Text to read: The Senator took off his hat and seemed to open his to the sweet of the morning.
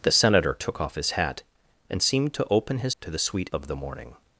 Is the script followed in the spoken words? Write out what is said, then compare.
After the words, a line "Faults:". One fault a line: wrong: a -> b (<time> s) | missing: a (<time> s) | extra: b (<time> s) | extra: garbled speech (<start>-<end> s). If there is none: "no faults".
The Senator took off his hat and seemed to open his to the sweet of the morning.
Faults:
no faults